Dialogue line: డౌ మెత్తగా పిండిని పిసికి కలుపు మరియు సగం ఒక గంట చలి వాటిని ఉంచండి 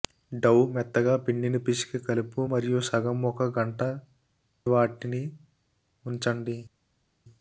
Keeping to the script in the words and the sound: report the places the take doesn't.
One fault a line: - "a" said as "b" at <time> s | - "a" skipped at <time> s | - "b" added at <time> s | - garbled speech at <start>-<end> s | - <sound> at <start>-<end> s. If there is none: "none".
- "చలి" skipped at 3.8 s